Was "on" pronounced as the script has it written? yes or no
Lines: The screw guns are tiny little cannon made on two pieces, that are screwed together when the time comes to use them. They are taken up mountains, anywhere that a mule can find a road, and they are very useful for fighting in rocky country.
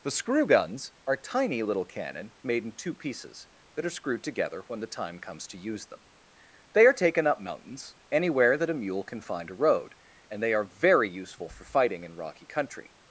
no